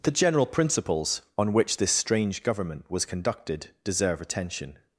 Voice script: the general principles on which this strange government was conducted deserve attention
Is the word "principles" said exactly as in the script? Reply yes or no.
yes